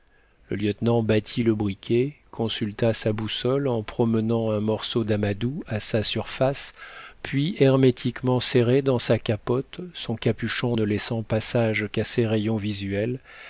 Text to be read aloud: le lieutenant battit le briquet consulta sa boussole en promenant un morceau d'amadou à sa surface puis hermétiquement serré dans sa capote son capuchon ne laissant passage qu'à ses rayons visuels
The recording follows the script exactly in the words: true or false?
true